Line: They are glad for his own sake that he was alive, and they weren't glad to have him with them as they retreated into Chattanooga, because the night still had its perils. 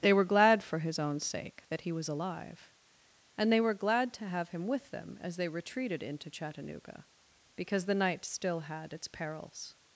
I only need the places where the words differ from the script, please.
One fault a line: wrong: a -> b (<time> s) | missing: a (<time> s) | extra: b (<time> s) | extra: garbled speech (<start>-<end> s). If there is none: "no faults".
wrong: are -> were (0.1 s)
wrong: weren't -> were (3.6 s)